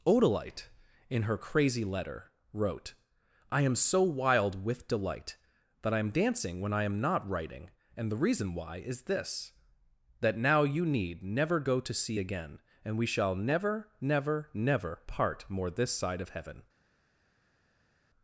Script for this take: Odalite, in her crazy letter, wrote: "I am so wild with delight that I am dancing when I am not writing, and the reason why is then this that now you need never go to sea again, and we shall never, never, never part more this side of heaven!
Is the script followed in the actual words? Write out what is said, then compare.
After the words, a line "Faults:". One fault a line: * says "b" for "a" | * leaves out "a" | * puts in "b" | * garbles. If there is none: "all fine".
Odalite, in her crazy letter, wrote: "I am so wild with delight that I am dancing when I am not writing, and the reason why is this that now you need never go to sea again, and we shall never, never, never part more this side of heaven!
Faults:
* leaves out "then"